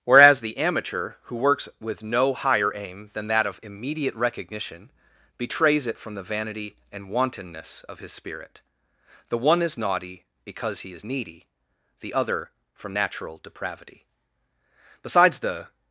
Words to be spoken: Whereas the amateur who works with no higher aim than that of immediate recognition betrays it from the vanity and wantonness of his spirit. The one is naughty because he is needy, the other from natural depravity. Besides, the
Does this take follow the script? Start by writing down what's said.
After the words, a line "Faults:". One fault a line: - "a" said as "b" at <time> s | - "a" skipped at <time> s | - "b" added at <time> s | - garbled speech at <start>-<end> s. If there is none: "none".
Whereas the amateur who works with no higher aim than that of immediate recognition betrays it from the vanity and wantonness of his spirit. The one is naughty because he is needy, the other from natural depravity. Besides, the
Faults:
none